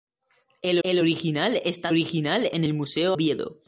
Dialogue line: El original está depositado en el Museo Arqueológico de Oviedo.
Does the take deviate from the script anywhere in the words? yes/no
yes